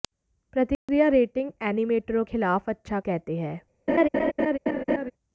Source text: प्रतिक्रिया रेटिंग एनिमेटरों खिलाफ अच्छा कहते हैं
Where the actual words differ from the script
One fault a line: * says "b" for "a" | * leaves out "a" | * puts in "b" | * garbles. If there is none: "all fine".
all fine